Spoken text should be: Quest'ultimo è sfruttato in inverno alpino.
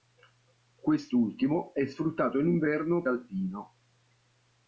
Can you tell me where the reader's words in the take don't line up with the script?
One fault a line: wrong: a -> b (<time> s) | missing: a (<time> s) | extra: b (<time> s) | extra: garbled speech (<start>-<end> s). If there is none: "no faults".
no faults